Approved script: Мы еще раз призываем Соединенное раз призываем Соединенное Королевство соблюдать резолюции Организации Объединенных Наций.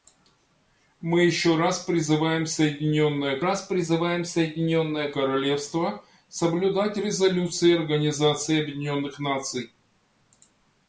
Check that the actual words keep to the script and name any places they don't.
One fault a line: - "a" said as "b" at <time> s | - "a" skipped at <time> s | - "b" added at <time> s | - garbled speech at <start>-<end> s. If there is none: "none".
none